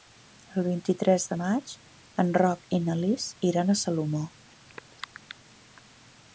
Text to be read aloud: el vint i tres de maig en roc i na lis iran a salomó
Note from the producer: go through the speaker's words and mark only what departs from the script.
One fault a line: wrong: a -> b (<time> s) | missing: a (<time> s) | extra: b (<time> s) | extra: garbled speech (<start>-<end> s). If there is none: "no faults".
no faults